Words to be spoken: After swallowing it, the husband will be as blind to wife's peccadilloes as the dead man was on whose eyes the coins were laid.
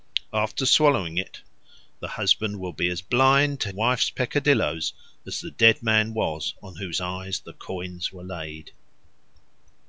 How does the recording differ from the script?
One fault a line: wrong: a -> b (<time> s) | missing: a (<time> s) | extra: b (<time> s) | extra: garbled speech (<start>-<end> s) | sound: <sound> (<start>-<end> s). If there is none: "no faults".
no faults